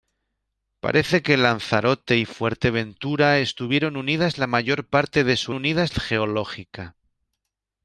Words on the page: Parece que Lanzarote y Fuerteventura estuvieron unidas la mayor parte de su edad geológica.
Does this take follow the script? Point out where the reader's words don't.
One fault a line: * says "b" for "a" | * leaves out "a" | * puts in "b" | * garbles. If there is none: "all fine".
* says "unidas" for "edad"